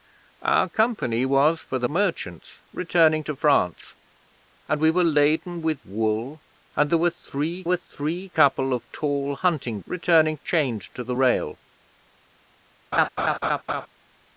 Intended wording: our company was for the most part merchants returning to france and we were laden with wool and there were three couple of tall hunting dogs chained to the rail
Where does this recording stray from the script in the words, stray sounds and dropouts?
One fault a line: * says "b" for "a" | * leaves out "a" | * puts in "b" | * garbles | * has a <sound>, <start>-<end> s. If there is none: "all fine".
* leaves out "most part"
* puts in "were three"
* says "returning" for "dogs"
* has a laugh, 12.9-13.9 s